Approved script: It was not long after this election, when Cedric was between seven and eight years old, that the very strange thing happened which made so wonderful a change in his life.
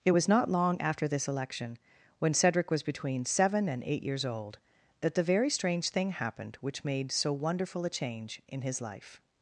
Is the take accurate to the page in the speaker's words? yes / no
yes